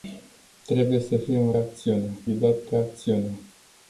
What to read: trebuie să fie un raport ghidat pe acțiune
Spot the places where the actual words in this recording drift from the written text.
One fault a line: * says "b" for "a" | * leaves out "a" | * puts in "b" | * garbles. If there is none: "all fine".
* says "acțiune" for "raport"